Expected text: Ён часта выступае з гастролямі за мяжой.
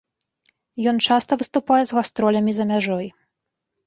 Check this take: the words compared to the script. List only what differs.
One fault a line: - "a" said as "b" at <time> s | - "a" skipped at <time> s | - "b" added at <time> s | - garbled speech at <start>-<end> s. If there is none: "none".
none